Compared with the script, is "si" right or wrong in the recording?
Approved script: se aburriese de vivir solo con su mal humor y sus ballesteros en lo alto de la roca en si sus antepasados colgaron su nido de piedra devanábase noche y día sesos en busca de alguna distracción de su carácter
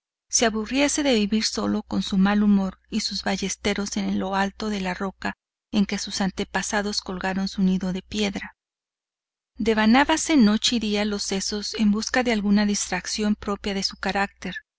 wrong